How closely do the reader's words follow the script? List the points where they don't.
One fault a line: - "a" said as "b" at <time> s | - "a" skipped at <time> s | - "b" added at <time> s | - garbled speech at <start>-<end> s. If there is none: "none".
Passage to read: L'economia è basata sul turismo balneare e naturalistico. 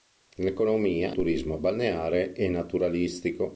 - "è basata sul" skipped at 1.1 s